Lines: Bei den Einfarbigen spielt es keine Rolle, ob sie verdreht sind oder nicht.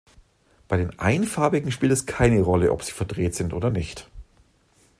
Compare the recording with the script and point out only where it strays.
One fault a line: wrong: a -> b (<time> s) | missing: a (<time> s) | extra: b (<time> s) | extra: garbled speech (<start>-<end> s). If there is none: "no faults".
no faults